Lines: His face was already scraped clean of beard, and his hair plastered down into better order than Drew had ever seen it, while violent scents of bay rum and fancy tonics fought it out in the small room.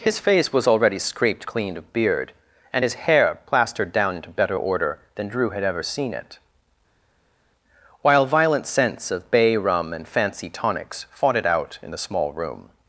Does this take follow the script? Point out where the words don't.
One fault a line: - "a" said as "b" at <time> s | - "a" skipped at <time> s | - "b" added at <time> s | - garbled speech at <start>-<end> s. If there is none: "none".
none